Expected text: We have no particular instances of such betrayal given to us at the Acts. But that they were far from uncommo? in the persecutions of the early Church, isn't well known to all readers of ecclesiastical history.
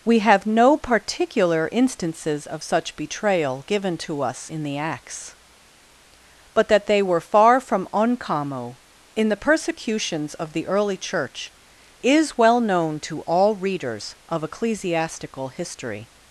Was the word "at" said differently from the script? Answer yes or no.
yes